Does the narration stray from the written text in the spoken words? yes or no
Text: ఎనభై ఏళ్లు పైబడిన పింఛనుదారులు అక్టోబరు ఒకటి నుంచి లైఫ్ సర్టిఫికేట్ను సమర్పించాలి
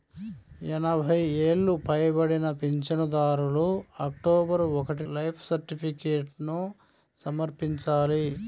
yes